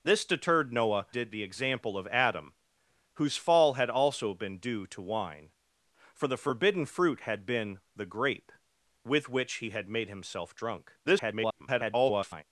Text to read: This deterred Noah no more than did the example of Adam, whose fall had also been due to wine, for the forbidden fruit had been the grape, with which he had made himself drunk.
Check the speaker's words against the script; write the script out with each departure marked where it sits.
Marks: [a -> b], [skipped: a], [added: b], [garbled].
This deterred Noah [skipped: no more than] did the example of Adam, whose fall had also been due to wine, for the forbidden fruit had been the grape, with which he had made himself drunk. [garbled]